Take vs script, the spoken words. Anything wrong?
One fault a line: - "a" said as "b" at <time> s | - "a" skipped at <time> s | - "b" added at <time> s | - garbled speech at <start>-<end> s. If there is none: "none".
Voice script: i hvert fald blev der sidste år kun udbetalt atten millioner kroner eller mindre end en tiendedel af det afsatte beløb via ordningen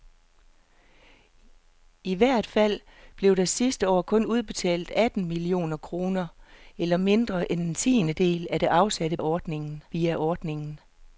- "beløb" said as "ordningen" at 9.2 s